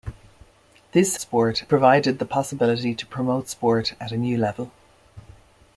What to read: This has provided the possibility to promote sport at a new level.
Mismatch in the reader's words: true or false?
true